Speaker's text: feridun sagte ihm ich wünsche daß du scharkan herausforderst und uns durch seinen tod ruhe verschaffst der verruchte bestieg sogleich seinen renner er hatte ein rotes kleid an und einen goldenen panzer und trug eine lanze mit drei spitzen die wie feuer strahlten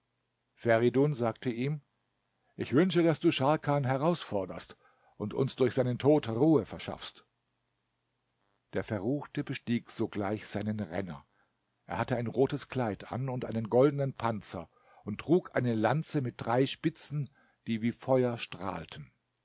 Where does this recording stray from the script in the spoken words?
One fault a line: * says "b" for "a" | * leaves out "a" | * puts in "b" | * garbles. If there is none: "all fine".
all fine